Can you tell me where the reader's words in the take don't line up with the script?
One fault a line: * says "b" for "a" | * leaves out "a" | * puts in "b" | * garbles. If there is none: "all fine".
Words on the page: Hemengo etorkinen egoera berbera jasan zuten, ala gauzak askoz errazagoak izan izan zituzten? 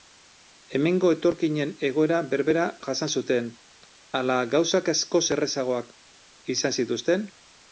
* leaves out "izan"